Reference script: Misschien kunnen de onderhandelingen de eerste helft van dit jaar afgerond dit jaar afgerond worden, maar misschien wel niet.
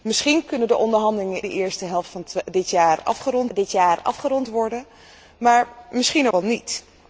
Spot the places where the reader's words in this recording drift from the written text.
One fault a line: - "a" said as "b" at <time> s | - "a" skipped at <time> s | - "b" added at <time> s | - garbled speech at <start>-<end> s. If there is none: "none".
none